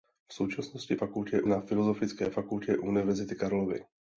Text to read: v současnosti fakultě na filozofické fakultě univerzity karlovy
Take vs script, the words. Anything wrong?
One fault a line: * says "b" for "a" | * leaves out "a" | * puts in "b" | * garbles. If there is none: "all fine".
all fine